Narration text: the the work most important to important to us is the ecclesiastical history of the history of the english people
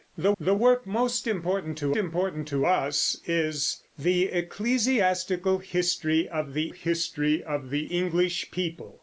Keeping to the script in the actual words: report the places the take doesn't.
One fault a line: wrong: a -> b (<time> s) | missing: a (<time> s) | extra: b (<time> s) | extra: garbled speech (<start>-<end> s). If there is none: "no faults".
no faults